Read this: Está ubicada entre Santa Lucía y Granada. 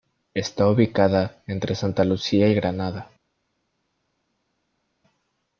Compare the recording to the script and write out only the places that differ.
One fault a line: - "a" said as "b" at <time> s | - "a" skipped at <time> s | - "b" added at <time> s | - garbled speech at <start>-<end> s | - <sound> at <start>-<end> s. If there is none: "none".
none